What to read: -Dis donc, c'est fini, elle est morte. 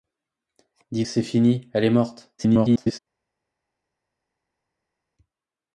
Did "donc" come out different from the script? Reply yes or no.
yes